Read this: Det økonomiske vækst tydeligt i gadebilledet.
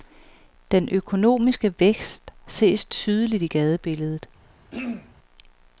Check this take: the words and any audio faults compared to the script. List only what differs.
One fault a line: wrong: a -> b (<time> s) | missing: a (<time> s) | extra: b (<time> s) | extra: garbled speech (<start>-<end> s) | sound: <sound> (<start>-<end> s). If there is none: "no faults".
wrong: Det -> Den (0.7 s)
extra: ses (2.5 s)
sound: throat clearing (4.7-5.1 s)